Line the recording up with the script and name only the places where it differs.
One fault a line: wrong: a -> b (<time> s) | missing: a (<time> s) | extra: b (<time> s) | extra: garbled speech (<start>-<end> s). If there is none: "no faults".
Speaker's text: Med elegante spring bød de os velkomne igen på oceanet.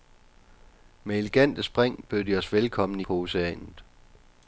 missing: igen (3.0 s)